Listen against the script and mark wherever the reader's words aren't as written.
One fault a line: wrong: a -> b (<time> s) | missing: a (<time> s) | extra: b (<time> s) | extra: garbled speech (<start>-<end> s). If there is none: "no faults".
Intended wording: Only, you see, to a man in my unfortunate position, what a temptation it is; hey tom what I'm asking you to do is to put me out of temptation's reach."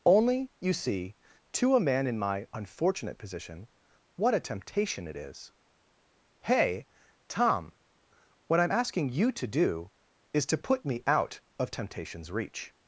no faults